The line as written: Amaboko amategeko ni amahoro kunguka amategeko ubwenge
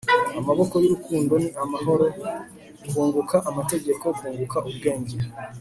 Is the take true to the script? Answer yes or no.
no